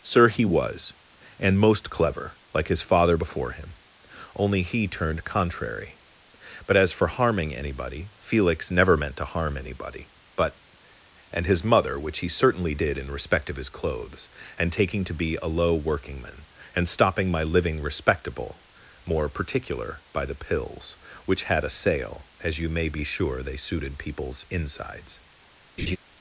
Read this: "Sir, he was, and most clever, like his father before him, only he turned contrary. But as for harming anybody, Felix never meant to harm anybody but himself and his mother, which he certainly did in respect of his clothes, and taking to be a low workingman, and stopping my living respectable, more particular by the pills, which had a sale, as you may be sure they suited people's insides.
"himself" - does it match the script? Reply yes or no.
no